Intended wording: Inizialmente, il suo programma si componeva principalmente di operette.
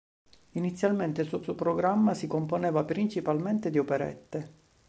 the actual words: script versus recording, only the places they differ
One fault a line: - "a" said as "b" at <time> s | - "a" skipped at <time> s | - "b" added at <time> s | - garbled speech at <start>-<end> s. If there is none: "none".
- "suo" added at 1.4 s